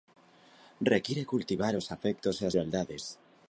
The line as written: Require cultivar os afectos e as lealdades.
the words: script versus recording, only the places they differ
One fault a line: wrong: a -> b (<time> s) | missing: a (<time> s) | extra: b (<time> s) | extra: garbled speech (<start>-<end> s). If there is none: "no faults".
no faults